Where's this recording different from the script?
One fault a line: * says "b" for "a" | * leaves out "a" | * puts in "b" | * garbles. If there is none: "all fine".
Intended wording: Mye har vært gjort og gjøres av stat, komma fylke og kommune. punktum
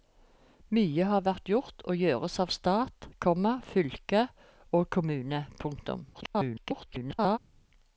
* garbles